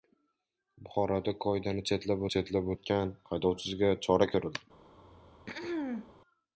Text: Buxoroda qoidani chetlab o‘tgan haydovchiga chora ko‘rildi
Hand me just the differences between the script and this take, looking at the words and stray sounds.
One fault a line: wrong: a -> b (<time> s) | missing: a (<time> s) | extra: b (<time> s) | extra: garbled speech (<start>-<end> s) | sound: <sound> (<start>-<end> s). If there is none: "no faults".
extra: chetlab (2.3 s)
sound: throat clearing (5.0-6.1 s)